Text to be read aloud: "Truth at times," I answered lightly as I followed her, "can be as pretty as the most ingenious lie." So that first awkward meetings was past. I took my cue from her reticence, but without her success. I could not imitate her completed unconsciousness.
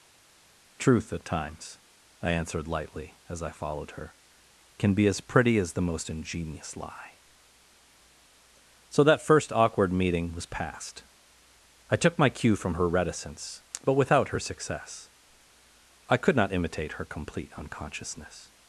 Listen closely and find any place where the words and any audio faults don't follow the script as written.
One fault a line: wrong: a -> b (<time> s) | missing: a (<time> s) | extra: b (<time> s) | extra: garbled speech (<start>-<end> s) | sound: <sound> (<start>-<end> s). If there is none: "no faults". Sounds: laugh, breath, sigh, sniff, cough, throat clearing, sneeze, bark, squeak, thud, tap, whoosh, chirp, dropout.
wrong: meetings -> meeting (9.9 s)
wrong: completed -> complete (17.0 s)